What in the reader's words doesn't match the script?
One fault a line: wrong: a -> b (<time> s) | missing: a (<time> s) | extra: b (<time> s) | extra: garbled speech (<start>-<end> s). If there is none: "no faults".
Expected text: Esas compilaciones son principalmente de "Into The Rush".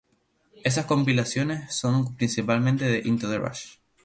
no faults